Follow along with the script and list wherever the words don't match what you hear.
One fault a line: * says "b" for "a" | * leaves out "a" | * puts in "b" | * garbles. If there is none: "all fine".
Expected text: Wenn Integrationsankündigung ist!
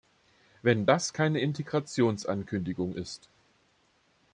* puts in "das keine"